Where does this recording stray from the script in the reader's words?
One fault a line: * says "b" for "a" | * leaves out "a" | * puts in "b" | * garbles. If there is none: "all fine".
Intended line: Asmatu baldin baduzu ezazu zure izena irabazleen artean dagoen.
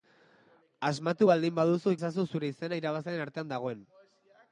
all fine